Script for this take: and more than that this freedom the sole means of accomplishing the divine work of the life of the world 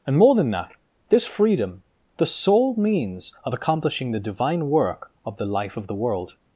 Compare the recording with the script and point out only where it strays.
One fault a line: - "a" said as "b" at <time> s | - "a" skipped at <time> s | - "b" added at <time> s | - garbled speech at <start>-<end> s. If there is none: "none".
none